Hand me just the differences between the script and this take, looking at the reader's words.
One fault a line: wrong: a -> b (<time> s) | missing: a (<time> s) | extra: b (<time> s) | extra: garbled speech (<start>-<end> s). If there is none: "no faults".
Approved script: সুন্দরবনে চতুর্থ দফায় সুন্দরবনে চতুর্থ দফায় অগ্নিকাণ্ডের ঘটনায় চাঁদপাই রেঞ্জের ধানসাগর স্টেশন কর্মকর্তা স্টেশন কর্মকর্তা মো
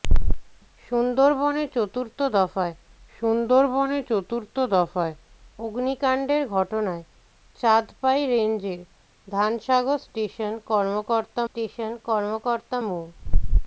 no faults